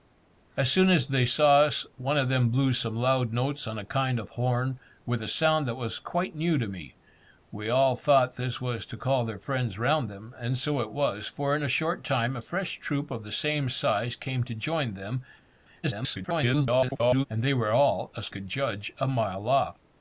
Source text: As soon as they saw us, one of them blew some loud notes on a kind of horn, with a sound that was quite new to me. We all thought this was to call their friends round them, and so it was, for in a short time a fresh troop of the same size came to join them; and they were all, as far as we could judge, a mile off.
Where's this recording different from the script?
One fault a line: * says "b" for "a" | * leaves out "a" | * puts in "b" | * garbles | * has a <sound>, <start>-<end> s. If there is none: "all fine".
* garbles
* leaves out "far as we"